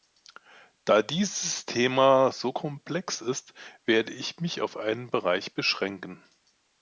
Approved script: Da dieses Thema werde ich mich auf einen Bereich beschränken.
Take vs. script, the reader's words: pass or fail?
fail